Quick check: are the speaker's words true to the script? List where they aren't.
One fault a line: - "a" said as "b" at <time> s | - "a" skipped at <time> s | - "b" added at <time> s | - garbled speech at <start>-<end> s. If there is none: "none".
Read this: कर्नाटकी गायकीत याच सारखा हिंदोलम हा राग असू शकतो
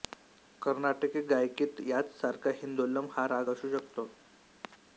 none